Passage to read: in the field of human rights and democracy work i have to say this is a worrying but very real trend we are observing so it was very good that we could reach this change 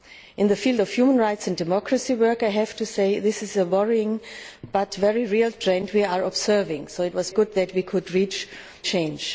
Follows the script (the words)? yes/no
no